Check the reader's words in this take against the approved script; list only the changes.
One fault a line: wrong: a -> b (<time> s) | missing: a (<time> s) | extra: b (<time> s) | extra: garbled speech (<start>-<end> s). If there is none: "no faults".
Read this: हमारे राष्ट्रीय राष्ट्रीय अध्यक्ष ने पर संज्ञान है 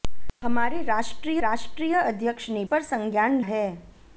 no faults